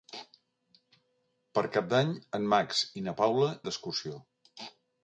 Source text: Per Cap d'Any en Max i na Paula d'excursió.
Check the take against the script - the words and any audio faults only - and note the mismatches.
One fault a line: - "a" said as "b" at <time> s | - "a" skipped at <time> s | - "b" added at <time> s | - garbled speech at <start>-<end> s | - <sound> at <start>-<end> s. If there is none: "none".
none